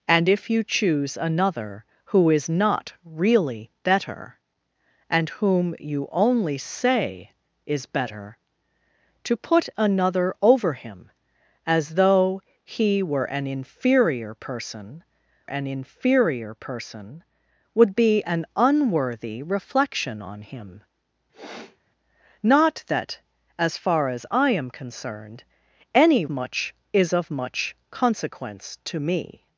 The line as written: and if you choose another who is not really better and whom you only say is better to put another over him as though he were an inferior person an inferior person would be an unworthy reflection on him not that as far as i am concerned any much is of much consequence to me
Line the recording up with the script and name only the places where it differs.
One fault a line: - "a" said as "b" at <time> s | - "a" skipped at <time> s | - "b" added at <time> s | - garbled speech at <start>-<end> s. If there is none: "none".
none